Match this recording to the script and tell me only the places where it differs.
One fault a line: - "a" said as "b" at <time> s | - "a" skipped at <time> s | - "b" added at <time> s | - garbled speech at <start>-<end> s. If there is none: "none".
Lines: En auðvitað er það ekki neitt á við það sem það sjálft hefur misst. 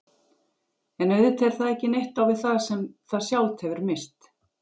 none